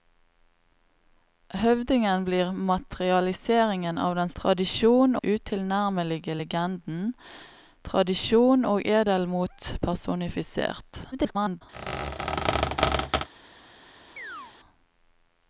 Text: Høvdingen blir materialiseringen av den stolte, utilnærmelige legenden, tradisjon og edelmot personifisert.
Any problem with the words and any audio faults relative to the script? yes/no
yes